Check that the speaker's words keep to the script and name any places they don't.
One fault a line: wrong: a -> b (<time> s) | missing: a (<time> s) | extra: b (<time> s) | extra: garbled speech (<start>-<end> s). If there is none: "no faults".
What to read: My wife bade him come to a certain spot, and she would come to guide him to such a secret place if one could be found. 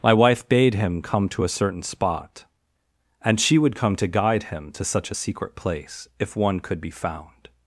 no faults